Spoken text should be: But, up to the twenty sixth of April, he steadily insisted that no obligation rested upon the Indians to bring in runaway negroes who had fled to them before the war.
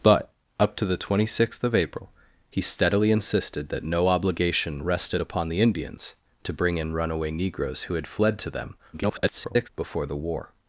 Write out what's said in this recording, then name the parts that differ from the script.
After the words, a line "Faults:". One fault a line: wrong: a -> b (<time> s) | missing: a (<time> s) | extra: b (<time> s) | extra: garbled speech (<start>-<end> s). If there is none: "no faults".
But, up to the twenty sixth of April, he steadily insisted that no obligation rested upon the Indians to bring in runaway negroes who had fled to them [garbled] before the war.
Faults:
extra: garbled speech (8.9-9.7 s)